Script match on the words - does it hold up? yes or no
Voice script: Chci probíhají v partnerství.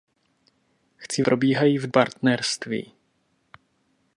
yes